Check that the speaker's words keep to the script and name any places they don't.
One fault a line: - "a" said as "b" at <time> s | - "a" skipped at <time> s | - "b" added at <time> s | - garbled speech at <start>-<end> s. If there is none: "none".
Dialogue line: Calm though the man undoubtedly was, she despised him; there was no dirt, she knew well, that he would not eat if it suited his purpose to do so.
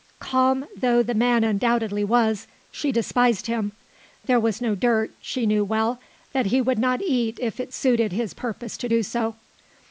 none